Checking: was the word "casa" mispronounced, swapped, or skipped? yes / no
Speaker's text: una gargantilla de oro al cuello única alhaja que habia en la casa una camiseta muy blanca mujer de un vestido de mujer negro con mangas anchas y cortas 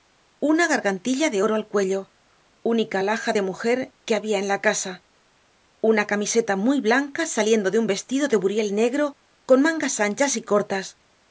no